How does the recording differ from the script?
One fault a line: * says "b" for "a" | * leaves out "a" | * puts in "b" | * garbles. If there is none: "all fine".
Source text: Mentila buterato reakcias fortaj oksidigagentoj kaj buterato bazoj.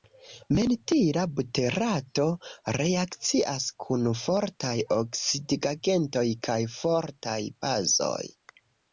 * puts in "kun"
* says "fortaj" for "buterato"